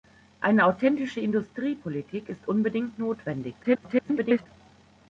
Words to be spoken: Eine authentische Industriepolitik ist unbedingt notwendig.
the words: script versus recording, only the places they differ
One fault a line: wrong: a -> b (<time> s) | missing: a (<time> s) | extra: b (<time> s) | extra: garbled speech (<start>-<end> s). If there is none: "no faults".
extra: garbled speech (3.6-4.5 s)